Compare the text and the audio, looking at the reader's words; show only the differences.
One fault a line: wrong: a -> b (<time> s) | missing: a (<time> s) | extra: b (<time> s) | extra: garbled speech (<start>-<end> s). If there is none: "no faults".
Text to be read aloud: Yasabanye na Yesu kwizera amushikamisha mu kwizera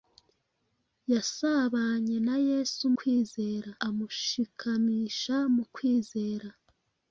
no faults